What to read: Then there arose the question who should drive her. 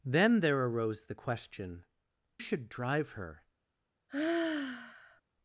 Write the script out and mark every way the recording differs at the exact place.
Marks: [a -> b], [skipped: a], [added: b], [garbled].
Then there arose the question [skipped: who] should drive her.